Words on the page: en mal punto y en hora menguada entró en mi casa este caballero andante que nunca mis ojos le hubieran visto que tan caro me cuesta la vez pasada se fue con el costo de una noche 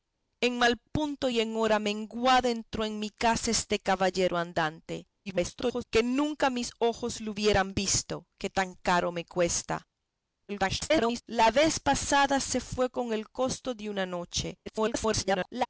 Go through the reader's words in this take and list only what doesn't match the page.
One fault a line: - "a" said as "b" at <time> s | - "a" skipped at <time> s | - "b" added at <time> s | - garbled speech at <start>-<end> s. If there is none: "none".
- garbled speech at 5.3-5.8 s
- garbled speech at 10.5-11.2 s
- garbled speech at 14.7-15.7 s